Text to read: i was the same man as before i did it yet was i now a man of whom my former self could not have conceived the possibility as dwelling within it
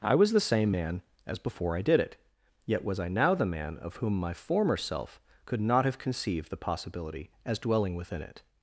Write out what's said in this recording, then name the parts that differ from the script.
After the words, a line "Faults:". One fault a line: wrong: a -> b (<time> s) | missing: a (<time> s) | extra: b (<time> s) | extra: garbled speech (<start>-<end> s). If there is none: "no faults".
i was the same man as before i did it yet was i now the man of whom my former self could not have conceived the possibility as dwelling within it
Faults:
wrong: a -> the (3.3 s)